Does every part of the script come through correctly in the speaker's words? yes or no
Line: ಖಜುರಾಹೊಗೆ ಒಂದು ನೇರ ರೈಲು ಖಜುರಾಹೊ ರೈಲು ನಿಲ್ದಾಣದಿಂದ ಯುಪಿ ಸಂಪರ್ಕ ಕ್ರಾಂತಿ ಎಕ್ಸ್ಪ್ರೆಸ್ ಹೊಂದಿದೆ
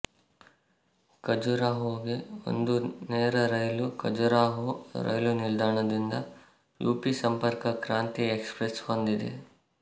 yes